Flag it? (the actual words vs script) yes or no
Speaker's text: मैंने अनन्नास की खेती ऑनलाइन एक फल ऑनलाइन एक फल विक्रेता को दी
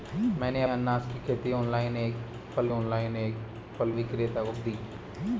no